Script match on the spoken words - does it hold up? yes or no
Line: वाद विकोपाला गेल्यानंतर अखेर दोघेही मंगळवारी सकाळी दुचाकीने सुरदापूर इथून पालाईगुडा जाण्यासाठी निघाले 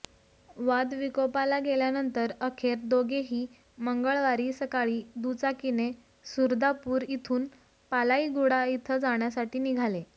no